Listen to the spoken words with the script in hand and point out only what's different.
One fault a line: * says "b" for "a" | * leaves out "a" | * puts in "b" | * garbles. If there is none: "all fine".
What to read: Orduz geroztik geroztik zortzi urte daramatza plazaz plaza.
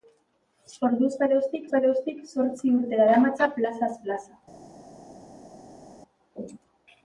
all fine